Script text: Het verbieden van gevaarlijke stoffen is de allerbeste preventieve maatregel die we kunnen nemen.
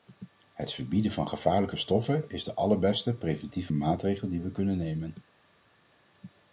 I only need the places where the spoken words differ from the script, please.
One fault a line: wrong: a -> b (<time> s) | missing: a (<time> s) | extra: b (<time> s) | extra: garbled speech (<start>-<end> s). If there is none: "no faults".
no faults